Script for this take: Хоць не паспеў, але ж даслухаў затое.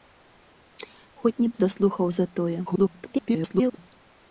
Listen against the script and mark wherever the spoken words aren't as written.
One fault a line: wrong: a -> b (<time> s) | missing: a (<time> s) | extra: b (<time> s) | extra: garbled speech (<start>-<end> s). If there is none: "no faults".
missing: паспеў але (1.5 s)
extra: garbled speech (2.7-3.8 s)